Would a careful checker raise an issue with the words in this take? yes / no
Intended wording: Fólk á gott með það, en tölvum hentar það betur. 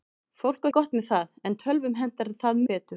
no